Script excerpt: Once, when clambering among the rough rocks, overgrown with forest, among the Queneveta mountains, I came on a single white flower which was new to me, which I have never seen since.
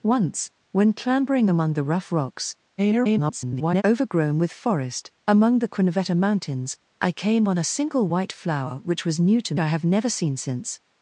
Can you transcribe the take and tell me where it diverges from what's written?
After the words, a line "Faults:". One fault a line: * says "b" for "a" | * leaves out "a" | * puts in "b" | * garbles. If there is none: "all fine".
Once, when clambering among the rough rocks, [garbled] overgrown with forest, among the Queneveta mountains, I came on a single white flower which was new to I have never seen since.
Faults:
* garbles
* leaves out "me which"